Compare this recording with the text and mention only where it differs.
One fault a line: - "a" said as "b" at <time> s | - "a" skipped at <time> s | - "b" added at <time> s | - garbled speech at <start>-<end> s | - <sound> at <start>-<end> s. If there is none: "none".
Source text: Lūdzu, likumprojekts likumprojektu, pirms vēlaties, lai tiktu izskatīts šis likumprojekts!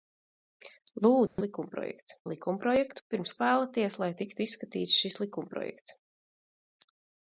- dropout at 1.3-1.4 s